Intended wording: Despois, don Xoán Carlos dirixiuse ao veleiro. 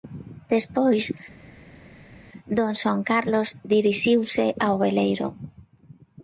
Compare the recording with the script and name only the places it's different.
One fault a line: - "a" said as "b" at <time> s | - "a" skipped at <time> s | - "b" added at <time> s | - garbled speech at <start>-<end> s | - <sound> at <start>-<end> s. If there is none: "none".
none